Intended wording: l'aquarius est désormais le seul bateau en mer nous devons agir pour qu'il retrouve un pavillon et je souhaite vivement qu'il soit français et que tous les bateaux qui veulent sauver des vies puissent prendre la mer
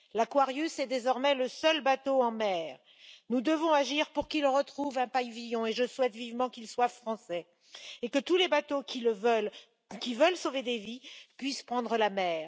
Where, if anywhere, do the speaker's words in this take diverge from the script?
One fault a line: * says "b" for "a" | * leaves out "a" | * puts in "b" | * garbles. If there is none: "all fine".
all fine